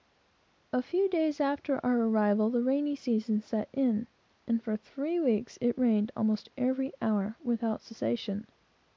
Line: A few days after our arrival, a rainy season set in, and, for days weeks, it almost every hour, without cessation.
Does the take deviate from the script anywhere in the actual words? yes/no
yes